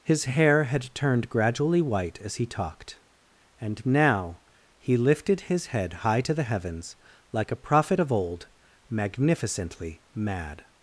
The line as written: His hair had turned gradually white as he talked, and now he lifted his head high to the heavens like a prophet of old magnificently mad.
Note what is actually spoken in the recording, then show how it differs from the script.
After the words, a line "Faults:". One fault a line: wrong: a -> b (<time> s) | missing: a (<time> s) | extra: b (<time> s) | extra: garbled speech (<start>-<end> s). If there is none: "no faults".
His hair had turned gradually white as he talked, and now he lifted his head high to the heavens like a prophet of old magnificently mad.
Faults:
no faults